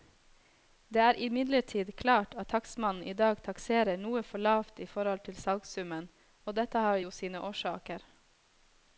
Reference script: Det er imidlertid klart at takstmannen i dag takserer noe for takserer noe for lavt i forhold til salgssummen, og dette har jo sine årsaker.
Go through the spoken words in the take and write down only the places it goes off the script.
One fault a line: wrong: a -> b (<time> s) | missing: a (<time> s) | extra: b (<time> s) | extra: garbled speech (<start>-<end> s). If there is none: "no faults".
missing: takserer noe for (4.4 s)